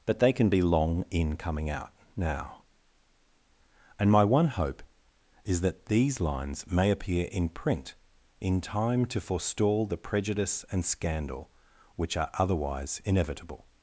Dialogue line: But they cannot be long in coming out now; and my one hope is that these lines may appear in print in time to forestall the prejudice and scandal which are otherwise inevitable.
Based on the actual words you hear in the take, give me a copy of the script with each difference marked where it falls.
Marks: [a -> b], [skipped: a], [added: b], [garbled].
But they [cannot -> can] be long in coming out now; and my one hope is that these lines may appear in print in time to forestall the prejudice and scandal which are otherwise inevitable.